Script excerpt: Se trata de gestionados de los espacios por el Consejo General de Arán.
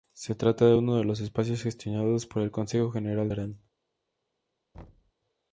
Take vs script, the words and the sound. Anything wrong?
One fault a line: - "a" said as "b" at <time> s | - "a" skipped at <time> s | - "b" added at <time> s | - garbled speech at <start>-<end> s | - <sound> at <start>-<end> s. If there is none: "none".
- "gestionados" said as "uno" at 0.7 s
- "gestionados" added at 1.6 s
- thud at 4.7-5.1 s